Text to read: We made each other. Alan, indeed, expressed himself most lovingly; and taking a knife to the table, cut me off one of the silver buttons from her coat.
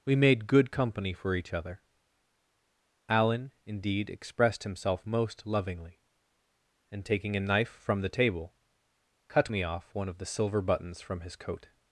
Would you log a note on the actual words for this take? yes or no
yes